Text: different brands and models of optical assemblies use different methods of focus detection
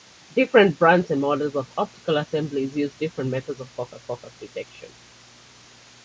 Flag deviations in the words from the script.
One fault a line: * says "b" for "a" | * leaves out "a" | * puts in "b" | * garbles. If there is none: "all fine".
* puts in "focus"